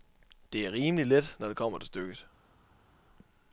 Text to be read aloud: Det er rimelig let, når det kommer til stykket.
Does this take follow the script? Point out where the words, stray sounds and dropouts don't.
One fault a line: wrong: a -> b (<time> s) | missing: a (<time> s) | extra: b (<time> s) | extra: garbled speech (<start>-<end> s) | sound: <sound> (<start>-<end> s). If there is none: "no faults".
no faults